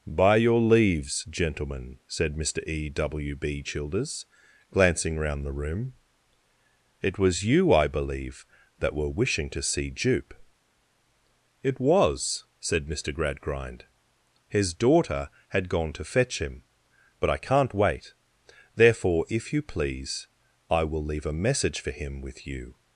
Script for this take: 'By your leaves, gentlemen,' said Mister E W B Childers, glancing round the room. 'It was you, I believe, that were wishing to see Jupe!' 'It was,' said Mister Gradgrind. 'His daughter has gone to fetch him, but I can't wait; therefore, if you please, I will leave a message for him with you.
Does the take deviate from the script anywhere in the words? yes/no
yes